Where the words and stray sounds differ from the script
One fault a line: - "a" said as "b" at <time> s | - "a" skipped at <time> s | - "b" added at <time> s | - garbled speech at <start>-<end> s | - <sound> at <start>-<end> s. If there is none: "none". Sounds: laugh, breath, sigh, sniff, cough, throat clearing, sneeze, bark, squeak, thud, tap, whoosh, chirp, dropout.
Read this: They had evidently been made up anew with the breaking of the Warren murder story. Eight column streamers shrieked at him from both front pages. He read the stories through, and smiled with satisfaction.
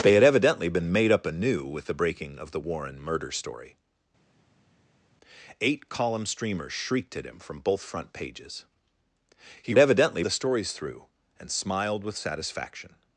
- "read" said as "evidently" at 9.8 s